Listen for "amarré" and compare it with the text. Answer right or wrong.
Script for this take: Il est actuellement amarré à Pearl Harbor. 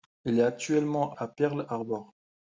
wrong